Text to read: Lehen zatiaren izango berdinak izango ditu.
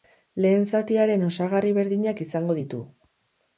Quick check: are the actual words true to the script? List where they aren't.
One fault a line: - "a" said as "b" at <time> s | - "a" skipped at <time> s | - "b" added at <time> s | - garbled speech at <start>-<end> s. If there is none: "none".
- "izango" said as "osagarri" at 1.3 s